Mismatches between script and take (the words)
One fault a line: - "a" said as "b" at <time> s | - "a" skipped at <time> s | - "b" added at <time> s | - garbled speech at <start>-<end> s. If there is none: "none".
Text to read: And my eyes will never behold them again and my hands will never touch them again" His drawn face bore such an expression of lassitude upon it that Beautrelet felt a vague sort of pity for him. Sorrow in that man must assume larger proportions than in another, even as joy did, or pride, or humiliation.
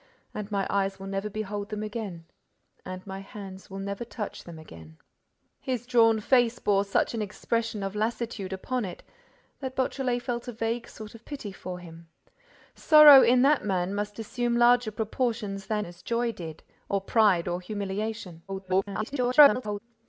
- "in another even" skipped at 15.8 s
- garbled speech at 18.5-19.8 s